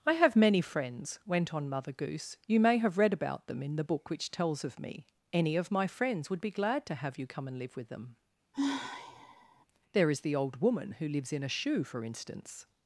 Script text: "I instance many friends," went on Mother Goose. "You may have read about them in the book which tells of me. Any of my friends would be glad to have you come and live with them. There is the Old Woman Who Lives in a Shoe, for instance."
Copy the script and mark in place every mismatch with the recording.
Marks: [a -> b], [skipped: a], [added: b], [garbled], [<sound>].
"I [instance -> have] many friends," went on Mother Goose. "You may have read about them in the book which tells of me. Any of my friends would be glad to have you come and live with them. [sigh] There is the Old Woman Who Lives in a Shoe, for instance."